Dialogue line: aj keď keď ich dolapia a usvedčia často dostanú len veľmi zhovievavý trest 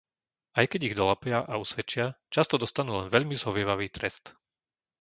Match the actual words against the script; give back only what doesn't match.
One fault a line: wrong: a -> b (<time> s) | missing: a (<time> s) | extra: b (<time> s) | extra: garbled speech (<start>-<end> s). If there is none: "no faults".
missing: keď (0.8 s)